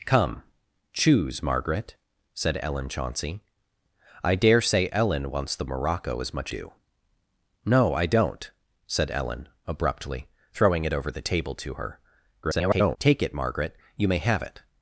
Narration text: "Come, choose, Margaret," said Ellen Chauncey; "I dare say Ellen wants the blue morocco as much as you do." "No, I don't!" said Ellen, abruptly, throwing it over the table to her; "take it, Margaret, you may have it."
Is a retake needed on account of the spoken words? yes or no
yes